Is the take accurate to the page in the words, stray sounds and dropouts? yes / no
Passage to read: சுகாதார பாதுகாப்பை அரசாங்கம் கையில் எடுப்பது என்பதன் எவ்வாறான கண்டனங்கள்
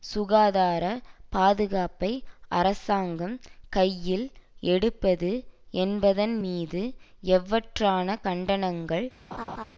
no